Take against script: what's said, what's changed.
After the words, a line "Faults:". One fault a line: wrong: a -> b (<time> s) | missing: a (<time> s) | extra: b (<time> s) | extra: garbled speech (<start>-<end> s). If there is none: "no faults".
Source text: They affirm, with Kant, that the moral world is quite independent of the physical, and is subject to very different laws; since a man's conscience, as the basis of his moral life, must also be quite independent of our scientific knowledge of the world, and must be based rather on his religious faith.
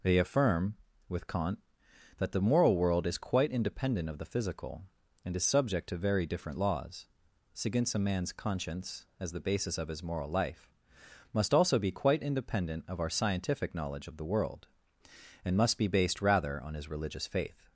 They affirm, with Kant, that the moral world is quite independent of the physical, and is subject to very different laws; since a man's conscience, as the basis of his moral life, must also be quite independent of our scientific knowledge of the world, and must be based rather on his religious faith.
Faults:
no faults